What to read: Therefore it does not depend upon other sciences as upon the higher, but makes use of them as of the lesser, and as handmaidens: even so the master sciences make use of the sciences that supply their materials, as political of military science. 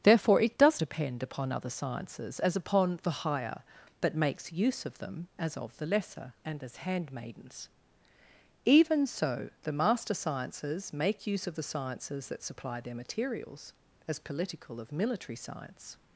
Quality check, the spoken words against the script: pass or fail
fail